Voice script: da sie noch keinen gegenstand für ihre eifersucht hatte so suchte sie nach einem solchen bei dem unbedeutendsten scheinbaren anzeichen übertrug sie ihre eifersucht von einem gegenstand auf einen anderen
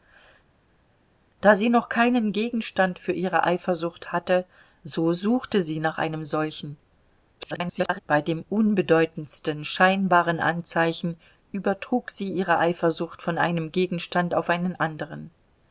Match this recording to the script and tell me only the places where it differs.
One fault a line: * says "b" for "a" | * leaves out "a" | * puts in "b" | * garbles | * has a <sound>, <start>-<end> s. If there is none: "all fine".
* garbles